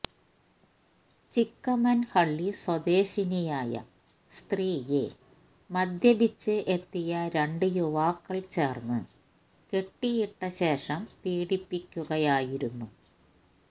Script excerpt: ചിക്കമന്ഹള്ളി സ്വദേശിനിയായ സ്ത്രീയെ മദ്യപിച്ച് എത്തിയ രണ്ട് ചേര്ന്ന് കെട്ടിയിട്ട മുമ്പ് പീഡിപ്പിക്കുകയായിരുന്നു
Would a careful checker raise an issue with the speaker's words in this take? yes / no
yes